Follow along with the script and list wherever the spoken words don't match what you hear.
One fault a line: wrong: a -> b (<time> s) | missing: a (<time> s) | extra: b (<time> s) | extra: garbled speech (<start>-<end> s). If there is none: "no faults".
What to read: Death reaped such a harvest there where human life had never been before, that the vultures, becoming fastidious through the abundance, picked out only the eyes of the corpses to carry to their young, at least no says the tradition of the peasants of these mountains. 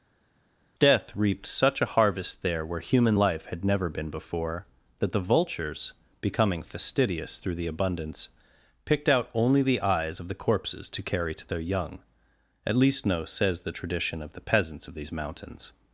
no faults